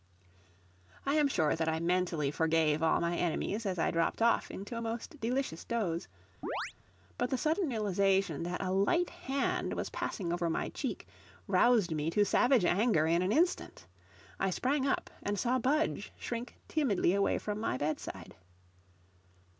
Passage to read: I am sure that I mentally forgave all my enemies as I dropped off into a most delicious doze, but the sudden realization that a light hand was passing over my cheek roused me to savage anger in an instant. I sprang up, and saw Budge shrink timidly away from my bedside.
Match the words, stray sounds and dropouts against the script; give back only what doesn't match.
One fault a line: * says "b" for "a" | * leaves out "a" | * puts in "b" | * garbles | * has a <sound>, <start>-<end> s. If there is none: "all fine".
* has a chirp, 6.4-6.7 s